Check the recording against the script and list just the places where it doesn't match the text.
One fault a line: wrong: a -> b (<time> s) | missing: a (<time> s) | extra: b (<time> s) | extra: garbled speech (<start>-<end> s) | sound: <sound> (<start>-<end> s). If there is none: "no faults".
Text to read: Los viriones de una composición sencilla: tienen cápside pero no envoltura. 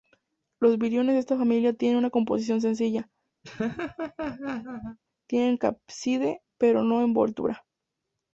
extra: esta familia tienen (1.2 s)
sound: laugh (3.4-5.0 s)